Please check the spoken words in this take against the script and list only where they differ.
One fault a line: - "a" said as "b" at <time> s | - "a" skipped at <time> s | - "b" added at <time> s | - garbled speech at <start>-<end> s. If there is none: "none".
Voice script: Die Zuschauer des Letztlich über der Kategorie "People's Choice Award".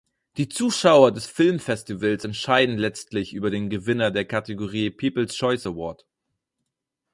- "Filmfestivals entscheiden" added at 1.3 s
- "den Gewinner" added at 3.5 s